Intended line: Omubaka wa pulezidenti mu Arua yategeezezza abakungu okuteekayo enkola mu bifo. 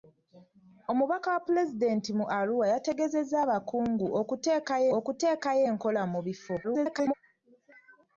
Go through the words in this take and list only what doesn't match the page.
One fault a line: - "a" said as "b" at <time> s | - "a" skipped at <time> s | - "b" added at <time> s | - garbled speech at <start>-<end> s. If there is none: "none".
- "okuteekayo" added at 5.0 s
- garbled speech at 6.6-7.1 s